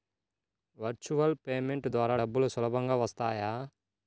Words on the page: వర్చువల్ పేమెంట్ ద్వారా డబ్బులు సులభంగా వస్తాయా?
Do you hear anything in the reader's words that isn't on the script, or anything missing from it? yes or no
no